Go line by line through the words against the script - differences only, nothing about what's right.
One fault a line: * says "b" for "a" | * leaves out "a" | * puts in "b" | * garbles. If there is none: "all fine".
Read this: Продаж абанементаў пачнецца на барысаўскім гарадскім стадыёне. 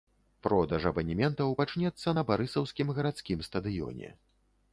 all fine